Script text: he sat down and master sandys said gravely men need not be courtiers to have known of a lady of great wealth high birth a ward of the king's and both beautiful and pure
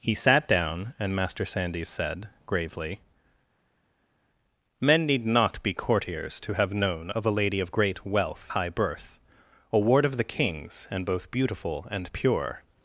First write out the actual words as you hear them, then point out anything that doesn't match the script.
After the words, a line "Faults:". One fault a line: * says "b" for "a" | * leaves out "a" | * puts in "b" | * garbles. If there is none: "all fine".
he sat down and master sandys said gravely men need not be courtiers to have known of a lady of great wealth high birth a ward of the king's and both beautiful and pure
Faults:
all fine